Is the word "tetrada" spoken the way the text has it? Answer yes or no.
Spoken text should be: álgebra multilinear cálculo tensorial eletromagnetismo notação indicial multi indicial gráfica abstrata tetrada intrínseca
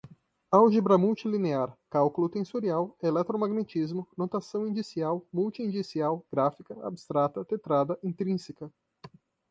yes